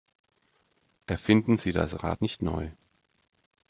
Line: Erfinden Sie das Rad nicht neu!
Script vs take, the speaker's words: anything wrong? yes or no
no